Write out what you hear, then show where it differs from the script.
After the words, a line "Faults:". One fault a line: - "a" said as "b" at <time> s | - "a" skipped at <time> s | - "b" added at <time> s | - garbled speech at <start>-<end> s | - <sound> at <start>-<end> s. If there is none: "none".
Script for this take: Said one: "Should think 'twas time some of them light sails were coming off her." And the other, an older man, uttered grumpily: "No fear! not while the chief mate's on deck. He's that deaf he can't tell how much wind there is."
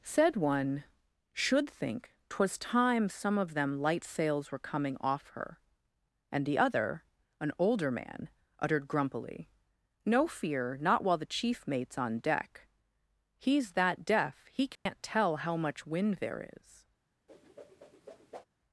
Said one: "Should think 'twas time some of them light sails were coming off her." And the other, an older man, uttered grumpily: "No fear! not while the chief mate's on deck. He's that deaf he can't tell how much wind there is."
Faults:
- dropout at 14.8-14.9 s
- whoosh at 17.3-18.5 s